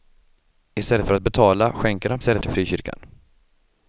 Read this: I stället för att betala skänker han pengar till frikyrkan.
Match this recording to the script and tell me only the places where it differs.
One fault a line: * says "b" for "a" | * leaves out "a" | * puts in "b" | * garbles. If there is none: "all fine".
* says "stället" for "pengar"